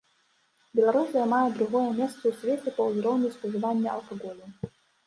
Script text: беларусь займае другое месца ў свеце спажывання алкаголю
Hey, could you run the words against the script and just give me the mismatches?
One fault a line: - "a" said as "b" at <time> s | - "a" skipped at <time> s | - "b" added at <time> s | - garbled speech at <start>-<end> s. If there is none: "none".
- "па ўзроўню" added at 2.8 s